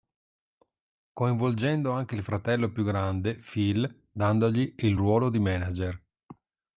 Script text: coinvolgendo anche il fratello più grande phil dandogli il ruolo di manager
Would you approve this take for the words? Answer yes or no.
yes